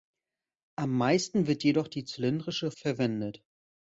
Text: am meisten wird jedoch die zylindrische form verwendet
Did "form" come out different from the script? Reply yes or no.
yes